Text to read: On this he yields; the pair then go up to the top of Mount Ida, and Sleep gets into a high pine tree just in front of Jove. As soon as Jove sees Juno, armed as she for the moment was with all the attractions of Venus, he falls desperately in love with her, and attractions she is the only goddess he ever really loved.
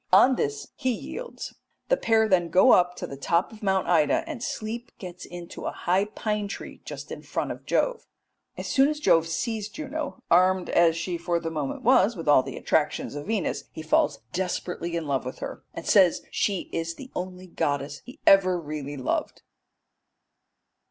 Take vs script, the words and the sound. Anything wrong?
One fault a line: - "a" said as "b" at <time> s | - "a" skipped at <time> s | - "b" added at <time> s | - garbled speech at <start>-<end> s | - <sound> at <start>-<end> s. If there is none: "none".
- "attractions" said as "says" at 15.9 s